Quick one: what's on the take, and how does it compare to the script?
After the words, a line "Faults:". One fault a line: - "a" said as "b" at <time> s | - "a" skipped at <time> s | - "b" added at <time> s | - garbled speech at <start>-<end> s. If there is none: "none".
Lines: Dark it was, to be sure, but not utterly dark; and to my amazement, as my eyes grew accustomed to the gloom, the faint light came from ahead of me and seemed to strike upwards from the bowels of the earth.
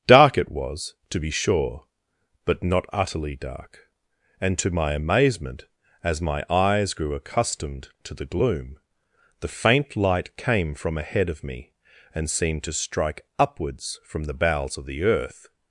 Dark it was, to be sure, but not utterly dark; and to my amazement, as my eyes grew accustomed to the gloom, the faint light came from ahead of me and seemed to strike upwards from the bowels of the earth.
Faults:
none